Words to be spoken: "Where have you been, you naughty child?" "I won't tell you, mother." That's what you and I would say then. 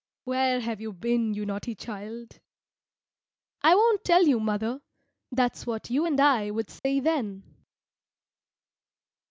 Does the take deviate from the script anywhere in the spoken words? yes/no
no